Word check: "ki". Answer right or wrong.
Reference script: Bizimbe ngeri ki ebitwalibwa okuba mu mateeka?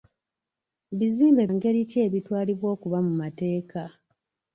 right